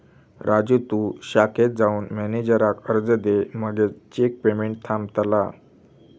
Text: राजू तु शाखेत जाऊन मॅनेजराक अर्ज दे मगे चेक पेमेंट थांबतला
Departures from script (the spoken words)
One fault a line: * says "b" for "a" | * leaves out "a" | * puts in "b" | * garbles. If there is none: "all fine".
all fine